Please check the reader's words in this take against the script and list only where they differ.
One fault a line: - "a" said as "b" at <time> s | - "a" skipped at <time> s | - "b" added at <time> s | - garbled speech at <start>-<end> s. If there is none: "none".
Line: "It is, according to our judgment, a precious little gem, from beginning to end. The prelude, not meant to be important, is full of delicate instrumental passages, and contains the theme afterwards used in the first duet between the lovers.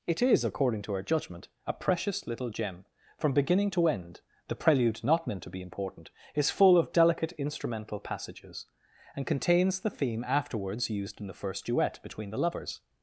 none